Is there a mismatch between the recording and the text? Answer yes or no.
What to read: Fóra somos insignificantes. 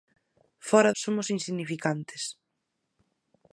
no